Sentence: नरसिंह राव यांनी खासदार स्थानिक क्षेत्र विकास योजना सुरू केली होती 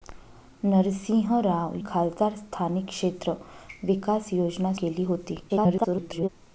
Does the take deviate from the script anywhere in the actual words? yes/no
yes